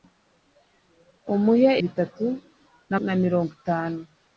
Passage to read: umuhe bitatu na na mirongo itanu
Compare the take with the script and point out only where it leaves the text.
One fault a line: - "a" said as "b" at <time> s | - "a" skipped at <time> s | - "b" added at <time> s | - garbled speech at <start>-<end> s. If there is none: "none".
none